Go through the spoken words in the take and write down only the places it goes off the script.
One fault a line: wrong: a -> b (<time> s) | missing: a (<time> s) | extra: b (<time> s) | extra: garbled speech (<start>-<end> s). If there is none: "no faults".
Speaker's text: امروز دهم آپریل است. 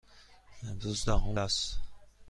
missing: آپریل (1.4 s)